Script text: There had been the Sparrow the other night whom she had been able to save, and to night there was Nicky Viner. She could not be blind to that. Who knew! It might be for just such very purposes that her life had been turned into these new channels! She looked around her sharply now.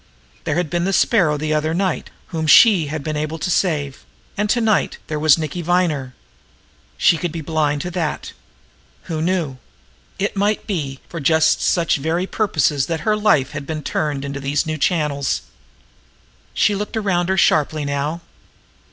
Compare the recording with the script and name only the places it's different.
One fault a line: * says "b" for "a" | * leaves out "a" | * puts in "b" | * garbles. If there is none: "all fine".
* leaves out "not"